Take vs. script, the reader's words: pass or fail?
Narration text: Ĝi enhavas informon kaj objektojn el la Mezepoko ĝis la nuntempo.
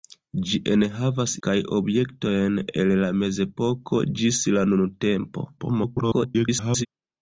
fail